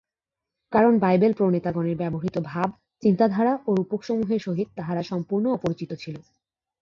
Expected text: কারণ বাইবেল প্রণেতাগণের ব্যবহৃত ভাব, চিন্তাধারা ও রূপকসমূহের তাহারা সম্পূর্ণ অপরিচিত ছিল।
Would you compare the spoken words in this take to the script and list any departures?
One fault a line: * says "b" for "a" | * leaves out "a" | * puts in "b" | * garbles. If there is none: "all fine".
* puts in "সহিত"